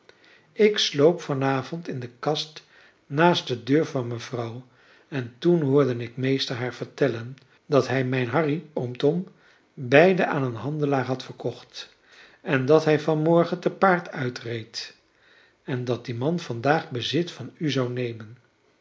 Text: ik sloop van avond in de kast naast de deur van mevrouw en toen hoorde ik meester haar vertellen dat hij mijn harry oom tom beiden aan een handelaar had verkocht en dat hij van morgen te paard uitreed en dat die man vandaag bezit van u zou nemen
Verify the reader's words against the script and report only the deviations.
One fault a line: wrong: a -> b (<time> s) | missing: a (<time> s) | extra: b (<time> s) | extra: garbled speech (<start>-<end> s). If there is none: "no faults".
no faults